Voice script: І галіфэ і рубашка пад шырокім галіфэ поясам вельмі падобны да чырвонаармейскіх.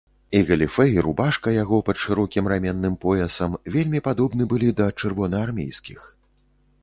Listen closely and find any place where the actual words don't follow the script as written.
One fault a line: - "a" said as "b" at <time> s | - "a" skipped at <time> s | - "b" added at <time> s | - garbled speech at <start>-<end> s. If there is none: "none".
- "яго" added at 1.6 s
- "галіфэ" said as "раменным" at 2.5 s
- "былі" added at 4.5 s